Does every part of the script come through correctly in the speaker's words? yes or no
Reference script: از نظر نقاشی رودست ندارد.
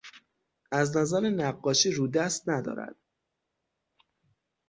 yes